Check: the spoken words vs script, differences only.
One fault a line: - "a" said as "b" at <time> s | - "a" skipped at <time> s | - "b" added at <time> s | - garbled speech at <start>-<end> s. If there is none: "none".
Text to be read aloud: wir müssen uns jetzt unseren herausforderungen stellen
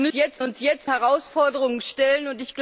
- "müssen" said as "jetzt" at 0.1 s
- "unseren" skipped at 0.9 s